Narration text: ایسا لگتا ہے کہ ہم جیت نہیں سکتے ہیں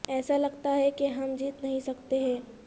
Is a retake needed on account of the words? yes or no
no